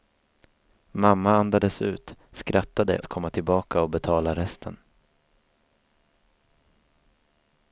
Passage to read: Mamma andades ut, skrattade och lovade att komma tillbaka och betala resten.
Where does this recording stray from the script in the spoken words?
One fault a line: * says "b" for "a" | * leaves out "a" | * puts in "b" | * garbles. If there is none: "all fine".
* leaves out "och lovade"